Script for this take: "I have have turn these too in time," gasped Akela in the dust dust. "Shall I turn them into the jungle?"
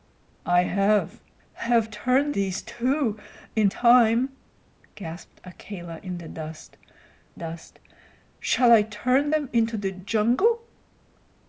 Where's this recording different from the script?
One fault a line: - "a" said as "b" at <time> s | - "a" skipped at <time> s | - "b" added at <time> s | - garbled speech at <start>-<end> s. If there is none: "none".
none